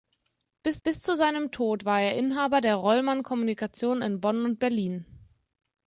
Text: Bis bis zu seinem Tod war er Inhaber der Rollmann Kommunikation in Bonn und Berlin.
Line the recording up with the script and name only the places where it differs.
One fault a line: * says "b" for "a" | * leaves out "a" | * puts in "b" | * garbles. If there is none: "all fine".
all fine